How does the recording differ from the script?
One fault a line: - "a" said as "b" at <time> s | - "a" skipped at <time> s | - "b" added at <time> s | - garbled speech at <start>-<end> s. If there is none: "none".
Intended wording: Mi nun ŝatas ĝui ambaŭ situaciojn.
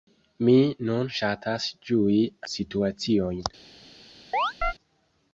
- "ambaŭ" skipped at 2.2 s